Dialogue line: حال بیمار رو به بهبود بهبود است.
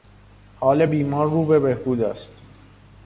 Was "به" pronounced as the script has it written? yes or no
yes